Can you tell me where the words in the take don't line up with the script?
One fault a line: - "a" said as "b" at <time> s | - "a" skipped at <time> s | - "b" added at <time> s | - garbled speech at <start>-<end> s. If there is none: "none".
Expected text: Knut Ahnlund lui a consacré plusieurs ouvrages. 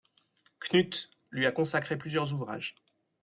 - "Ahnlund" skipped at 1.1 s